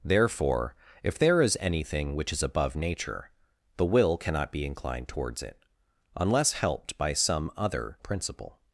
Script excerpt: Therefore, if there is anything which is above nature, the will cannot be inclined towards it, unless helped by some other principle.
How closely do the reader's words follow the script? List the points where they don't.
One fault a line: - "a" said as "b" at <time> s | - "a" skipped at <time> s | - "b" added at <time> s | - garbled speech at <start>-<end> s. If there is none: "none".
none